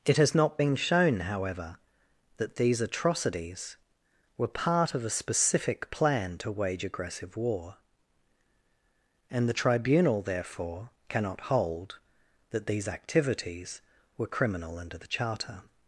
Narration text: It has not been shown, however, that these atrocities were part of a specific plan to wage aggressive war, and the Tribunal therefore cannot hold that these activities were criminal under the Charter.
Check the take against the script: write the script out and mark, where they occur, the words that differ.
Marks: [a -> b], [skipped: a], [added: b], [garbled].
It has not been shown, however, that these atrocities were part of a specific plan to wage aggressive war, and the Tribunal therefore cannot hold that these activities were criminal under the Charter.